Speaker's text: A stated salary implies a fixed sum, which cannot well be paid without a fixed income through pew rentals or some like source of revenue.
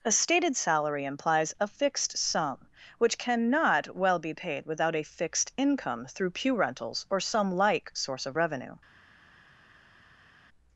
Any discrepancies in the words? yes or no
no